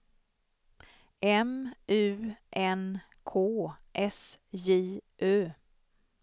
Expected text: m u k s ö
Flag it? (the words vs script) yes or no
yes